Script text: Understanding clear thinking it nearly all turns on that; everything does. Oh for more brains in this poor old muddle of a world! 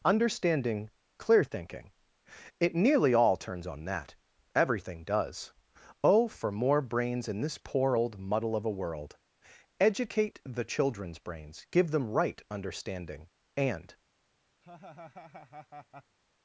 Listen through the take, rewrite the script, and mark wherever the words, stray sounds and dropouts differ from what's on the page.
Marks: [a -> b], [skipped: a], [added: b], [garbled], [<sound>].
Understanding clear thinking it nearly all turns on that; everything does. Oh for more brains in this poor old muddle of a world! [added: Educate the children's brains give them right understanding and] [laugh]